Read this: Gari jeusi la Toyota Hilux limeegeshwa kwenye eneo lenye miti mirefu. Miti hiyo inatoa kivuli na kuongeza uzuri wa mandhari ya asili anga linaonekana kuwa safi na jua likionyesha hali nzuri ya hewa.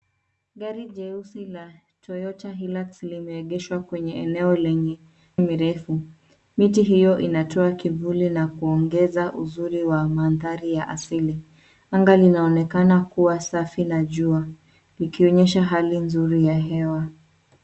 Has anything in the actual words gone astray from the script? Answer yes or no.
yes